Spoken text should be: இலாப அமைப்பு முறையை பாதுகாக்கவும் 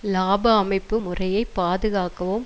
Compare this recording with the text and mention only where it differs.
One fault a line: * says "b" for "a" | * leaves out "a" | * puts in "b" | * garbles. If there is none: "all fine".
all fine